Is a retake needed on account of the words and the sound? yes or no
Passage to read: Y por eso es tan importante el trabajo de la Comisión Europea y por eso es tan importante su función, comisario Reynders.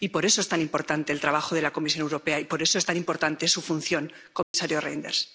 yes